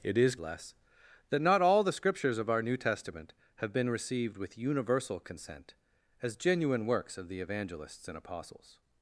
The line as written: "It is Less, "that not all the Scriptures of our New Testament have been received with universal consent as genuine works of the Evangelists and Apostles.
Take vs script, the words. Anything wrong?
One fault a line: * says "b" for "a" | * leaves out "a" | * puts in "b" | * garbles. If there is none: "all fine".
all fine